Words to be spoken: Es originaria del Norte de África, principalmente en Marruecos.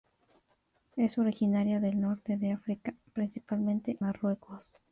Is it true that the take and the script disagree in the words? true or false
true